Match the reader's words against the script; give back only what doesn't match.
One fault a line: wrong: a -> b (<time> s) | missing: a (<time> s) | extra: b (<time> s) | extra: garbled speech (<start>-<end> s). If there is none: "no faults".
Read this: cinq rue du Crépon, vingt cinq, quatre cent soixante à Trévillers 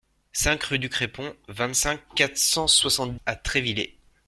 no faults